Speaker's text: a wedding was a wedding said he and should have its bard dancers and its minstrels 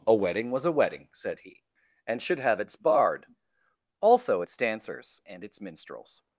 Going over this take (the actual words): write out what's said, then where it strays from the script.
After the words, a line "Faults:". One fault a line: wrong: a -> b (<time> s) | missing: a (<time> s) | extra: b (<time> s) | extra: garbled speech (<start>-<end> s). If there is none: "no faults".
a wedding was a wedding said he and should have its bard also its dancers and its minstrels
Faults:
extra: also its (4.0 s)